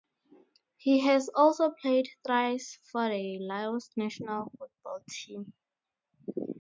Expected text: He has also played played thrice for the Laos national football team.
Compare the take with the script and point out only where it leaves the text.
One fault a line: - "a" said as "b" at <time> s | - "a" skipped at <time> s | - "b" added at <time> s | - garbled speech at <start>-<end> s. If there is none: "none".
- "played" skipped at 2.1 s